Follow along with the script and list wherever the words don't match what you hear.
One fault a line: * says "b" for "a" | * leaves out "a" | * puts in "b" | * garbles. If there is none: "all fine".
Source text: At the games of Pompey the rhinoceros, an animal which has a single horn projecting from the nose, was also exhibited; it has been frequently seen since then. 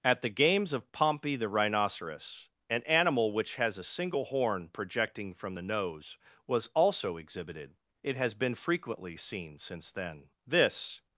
* puts in "This"